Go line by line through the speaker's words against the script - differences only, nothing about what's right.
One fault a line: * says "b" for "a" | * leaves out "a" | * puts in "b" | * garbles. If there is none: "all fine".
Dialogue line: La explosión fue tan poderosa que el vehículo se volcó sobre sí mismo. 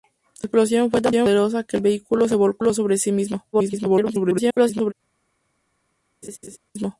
* garbles